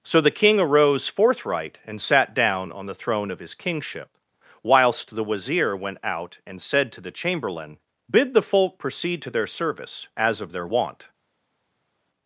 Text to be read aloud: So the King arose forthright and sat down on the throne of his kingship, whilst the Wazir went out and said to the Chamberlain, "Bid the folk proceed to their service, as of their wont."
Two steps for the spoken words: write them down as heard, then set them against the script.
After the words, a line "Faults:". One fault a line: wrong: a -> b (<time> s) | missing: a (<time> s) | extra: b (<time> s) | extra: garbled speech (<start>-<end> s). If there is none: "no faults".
So the King arose forthright and sat down on the throne of his kingship, whilst the Wazir went out and said to the Chamberlain, "Bid the folk proceed to their service, as of their wont."
Faults:
no faults